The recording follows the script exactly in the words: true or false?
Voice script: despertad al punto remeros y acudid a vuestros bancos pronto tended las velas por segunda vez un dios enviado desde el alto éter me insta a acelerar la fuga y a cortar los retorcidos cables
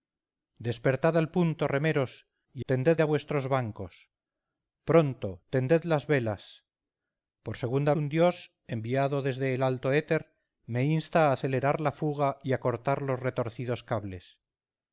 false